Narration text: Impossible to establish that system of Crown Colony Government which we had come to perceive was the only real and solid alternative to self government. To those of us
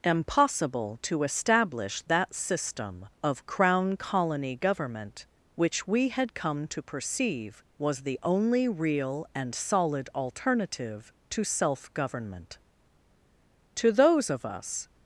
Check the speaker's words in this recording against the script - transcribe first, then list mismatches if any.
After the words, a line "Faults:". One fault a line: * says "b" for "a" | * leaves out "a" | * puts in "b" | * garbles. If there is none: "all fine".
Impossible to establish that system of Crown Colony Government which we had come to perceive was the only real and solid alternative to self government. To those of us
Faults:
all fine